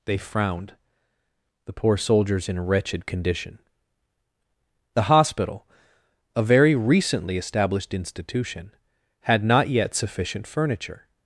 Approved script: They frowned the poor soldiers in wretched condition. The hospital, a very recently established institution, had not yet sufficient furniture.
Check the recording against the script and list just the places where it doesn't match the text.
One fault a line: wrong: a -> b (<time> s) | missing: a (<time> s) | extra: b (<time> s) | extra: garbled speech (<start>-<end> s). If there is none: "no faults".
no faults